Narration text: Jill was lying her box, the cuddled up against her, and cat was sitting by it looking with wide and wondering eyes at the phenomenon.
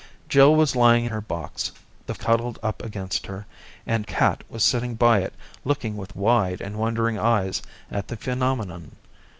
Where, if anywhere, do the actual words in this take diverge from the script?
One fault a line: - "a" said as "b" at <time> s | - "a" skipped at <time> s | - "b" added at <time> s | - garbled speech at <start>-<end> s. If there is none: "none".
none